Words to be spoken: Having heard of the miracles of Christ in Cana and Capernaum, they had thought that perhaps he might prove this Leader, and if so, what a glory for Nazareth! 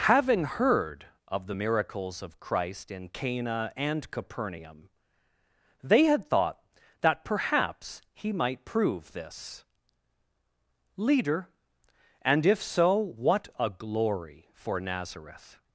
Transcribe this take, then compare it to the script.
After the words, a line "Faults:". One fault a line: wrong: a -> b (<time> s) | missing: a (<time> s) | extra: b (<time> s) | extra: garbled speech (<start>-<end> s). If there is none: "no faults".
Having heard of the miracles of Christ in Cana and Capernaum, they had thought that perhaps he might prove this Leader, and if so, what a glory for Nazareth!
Faults:
no faults